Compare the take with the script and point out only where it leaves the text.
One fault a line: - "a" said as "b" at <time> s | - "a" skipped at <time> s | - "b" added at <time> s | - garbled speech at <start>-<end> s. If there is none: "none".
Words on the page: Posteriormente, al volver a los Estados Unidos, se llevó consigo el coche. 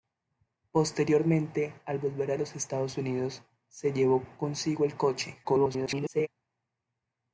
- garbled speech at 5.4-6.3 s